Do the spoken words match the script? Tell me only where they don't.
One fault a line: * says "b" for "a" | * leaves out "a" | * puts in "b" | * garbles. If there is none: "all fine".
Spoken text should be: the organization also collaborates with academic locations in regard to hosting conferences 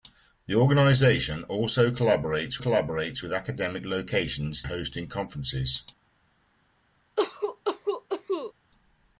* puts in "collaborates"
* leaves out "in regard to"